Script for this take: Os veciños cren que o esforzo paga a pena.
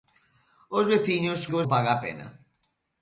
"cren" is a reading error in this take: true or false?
true